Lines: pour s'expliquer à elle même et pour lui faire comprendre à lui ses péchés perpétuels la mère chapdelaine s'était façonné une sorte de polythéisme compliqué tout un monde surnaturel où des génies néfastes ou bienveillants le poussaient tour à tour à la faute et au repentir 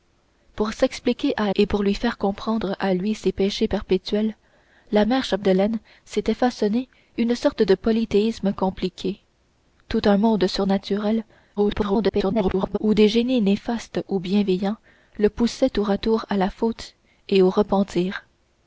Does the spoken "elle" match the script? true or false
false